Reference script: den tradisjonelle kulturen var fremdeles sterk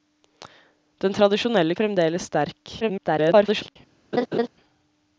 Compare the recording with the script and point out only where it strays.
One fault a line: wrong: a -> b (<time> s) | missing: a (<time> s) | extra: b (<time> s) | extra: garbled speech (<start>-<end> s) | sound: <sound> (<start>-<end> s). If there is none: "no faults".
missing: kulturen var (1.8 s)
extra: garbled speech (2.8-3.8 s)
sound: laugh (4.1-4.5 s)